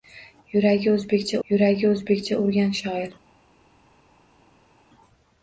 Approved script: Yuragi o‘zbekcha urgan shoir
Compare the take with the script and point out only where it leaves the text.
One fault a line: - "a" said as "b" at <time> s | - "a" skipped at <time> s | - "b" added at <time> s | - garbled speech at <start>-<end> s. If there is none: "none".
- "yuragi o‘zbekcha" added at 1.5 s